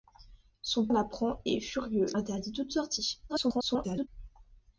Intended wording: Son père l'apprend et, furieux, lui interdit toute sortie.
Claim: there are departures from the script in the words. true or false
true